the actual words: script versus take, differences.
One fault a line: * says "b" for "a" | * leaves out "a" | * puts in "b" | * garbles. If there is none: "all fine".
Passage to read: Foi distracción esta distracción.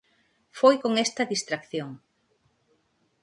* says "con" for "distracción"